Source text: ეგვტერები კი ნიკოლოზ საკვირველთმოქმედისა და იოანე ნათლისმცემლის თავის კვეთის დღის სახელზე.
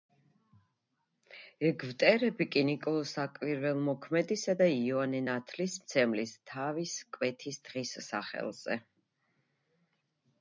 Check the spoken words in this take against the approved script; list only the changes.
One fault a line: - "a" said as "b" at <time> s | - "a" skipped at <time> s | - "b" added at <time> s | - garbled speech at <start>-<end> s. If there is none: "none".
none